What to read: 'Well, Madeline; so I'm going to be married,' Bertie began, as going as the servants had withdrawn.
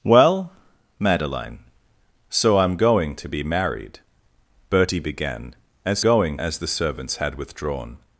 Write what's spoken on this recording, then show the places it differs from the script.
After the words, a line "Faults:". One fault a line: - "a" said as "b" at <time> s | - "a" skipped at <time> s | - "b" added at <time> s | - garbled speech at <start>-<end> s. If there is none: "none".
'Well, Madeline; so I'm going to be married,' Bertie began, as going as the servants had withdrawn.
Faults:
none